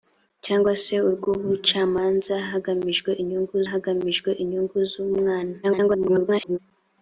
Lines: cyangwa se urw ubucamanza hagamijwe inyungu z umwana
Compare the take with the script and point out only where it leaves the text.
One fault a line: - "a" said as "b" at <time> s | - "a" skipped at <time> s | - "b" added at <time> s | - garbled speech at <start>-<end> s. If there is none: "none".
- "hagamijwe inyungu" added at 3.7 s
- garbled speech at 5.6-6.6 s